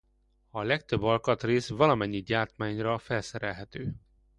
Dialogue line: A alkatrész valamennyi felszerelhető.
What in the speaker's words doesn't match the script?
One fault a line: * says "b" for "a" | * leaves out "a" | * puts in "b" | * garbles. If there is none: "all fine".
* puts in "legtöbb"
* puts in "gyártmányra"